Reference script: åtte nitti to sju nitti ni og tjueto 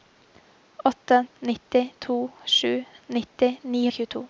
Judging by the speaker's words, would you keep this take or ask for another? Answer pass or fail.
pass